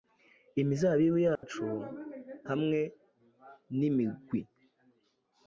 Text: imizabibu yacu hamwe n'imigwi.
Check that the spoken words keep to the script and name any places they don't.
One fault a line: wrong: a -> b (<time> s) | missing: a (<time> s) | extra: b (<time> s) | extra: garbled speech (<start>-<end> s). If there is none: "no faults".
no faults